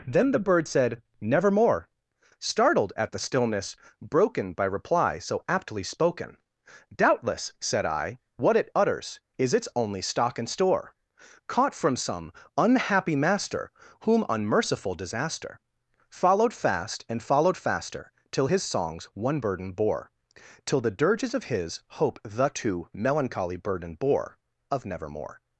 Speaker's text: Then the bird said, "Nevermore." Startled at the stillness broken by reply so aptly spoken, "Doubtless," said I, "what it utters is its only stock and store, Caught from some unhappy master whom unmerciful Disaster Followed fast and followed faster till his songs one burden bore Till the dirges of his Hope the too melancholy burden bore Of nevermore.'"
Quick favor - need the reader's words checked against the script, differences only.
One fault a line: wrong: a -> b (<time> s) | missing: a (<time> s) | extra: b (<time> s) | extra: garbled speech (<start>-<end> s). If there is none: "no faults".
no faults